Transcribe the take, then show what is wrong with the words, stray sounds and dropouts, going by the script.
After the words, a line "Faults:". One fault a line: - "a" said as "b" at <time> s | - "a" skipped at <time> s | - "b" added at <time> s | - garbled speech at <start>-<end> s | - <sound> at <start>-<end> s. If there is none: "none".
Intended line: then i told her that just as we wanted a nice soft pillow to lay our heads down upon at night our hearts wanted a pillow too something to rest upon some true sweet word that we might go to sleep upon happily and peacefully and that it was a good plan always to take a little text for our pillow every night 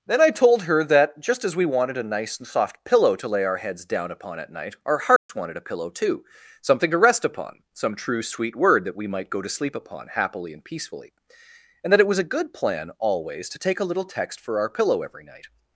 then i told her that just as we wanted a nice and soft pillow to lay our heads down upon at night our hearts wanted a pillow too something to rest upon some true sweet word that we might go to sleep upon happily and peacefully and that it was a good plan always to take a little text for our pillow every night
Faults:
- "and" added at 2.4 s
- dropout at 5.2-5.3 s